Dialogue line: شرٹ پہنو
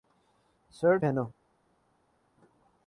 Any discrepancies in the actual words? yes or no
no